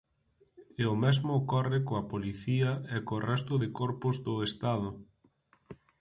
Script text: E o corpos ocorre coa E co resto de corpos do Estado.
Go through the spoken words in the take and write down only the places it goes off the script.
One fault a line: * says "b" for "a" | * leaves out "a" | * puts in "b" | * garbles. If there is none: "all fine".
* says "mesmo" for "corpos"
* puts in "Policía"